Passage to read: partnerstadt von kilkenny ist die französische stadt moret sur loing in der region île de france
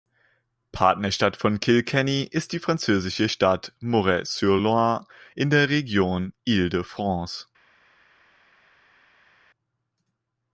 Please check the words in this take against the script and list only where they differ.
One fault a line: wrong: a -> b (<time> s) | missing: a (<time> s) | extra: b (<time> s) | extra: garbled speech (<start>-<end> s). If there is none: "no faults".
no faults